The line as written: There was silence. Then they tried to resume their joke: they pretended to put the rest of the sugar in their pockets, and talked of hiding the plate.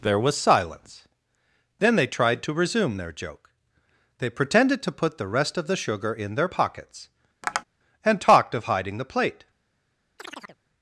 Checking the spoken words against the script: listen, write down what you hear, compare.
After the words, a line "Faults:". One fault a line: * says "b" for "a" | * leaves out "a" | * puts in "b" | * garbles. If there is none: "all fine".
There was silence. Then they tried to resume their joke: they pretended to put the rest of the sugar in their pockets, and talked of hiding the plate.
Faults:
all fine